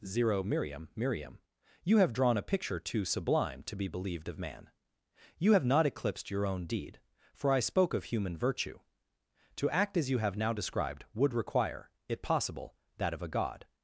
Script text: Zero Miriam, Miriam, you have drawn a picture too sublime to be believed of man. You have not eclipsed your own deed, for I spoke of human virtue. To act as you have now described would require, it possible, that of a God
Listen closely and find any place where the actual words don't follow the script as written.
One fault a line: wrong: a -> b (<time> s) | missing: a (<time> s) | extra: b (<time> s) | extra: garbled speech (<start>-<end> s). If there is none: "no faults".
no faults